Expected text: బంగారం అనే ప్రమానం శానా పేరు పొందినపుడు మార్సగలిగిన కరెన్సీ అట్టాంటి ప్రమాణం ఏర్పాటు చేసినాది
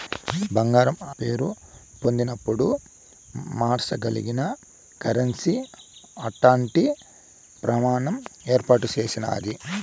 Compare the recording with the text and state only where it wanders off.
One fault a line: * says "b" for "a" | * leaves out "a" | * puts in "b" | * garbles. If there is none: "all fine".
* leaves out "అనే ప్రమానం శానా"